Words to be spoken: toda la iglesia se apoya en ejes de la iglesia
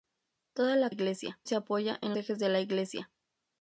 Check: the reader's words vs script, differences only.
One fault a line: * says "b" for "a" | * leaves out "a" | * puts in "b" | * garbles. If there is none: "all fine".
all fine